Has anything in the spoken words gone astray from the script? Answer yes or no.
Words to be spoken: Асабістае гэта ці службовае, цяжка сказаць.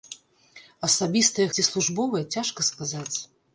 yes